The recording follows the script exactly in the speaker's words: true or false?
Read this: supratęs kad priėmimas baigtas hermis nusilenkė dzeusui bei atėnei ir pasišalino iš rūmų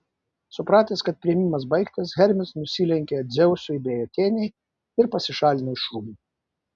true